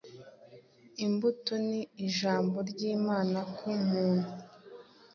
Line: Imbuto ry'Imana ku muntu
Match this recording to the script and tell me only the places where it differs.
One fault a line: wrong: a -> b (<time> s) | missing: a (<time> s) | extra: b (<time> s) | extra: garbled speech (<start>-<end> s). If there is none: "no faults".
extra: ni Ijambo (1.7 s)